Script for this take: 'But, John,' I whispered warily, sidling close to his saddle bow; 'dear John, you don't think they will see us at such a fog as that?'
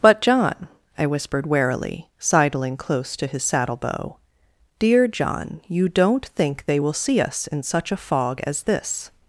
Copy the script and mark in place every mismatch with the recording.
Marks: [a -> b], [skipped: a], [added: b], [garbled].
'But, John,' I whispered warily, sidling close to his saddle bow; 'dear John, you don't think they will see us [at -> in] such a fog as [that?' -> this]